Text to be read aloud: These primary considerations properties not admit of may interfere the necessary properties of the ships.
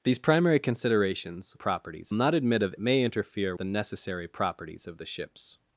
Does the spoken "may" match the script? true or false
true